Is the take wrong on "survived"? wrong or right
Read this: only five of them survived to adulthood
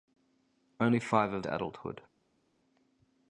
wrong